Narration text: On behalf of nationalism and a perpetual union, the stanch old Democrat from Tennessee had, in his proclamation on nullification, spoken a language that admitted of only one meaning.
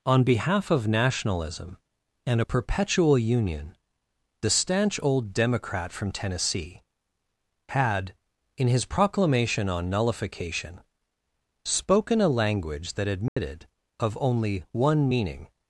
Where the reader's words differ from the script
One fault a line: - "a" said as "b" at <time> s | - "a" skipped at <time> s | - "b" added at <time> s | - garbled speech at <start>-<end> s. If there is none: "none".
none